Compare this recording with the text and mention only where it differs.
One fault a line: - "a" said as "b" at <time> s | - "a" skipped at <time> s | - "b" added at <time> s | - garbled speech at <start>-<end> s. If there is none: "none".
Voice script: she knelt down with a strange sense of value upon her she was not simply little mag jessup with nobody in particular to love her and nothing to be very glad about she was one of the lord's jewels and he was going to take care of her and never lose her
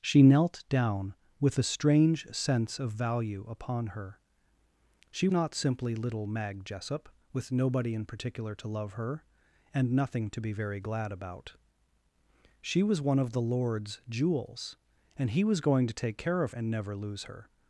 - "was" skipped at 5.3 s
- "her" skipped at 16.5 s